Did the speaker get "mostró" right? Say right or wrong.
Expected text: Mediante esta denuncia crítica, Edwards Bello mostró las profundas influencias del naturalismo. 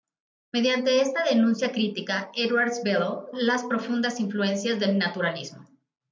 wrong